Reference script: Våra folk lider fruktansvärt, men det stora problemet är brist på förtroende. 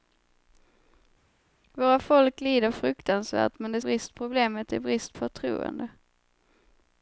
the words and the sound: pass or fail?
fail